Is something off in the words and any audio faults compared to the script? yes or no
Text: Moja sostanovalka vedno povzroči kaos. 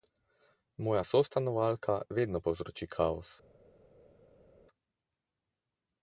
no